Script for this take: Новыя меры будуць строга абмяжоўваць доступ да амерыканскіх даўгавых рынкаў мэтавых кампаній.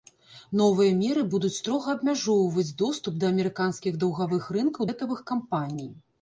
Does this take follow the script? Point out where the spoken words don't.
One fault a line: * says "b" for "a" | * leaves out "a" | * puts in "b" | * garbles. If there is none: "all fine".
all fine